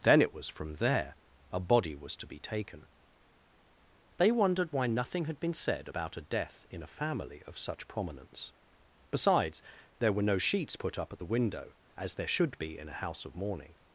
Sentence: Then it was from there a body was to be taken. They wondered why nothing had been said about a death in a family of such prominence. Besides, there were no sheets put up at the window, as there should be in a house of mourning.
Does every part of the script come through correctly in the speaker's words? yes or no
yes